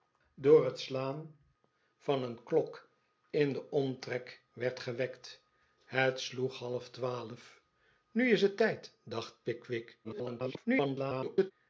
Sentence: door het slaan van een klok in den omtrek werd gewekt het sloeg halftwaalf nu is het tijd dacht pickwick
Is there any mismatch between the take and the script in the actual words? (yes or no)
yes